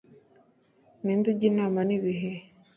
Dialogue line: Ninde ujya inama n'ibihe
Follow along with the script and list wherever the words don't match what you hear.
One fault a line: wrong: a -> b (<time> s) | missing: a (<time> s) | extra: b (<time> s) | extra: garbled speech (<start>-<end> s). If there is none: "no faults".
no faults